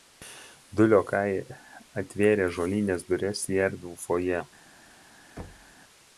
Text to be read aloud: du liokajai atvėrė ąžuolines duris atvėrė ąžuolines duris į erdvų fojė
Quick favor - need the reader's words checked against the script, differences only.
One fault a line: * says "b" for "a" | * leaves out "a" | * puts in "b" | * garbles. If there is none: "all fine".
* leaves out "atvėrė ąžuolines duris"